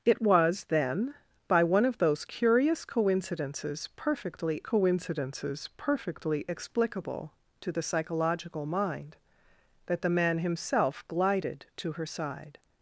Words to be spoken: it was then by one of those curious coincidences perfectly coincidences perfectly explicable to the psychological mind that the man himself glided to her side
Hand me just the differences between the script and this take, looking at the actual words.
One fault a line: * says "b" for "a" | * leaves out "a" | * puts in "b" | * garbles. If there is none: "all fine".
all fine